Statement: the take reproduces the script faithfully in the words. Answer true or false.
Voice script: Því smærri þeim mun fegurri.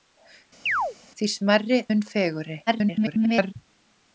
false